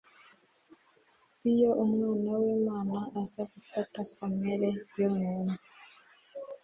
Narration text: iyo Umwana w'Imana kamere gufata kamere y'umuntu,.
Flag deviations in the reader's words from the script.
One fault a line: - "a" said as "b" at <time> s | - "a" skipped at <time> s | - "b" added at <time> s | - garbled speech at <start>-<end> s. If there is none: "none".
- "kamere" said as "aza" at 3.2 s